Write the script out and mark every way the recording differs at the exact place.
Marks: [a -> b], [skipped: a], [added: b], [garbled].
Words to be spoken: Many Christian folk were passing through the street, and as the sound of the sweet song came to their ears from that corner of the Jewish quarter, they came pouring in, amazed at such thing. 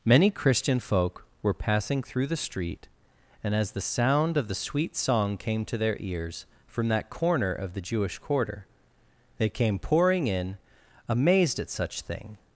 Many Christian folk were passing through the street, and as the sound of the sweet song came to their ears from that corner of the Jewish quarter, they came pouring in, amazed at such thing.